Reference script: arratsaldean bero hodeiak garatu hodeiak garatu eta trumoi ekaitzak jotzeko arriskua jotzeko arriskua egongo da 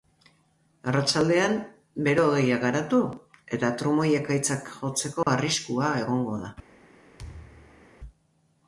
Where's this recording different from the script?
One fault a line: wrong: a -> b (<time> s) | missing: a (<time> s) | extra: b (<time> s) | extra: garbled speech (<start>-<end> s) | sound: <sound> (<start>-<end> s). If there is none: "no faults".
missing: hodeiak garatu (3.0 s)
sound: dropout (5.2-5.3 s)
missing: jotzeko arriskua (6.0 s)
sound: thud (7.2-7.9 s)